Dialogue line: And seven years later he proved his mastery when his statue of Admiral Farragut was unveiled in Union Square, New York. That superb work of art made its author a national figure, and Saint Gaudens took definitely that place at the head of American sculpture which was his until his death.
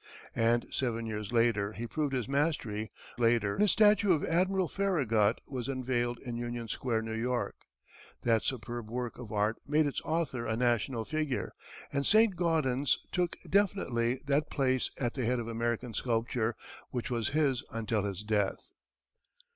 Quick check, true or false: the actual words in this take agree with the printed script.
false